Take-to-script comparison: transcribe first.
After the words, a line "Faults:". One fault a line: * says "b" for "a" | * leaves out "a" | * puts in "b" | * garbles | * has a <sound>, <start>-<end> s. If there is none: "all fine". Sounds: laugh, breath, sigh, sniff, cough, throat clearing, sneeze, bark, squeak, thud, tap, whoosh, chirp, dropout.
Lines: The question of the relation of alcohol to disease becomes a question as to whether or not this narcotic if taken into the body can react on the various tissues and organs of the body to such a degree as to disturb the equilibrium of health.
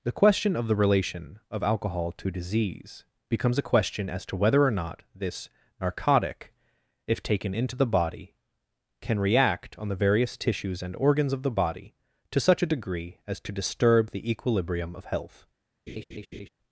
The question of the relation of alcohol to disease becomes a question as to whether or not this narcotic if taken into the body can react on the various tissues and organs of the body to such a degree as to disturb the equilibrium of health.
Faults:
* has a laugh, 15.9-16.5 s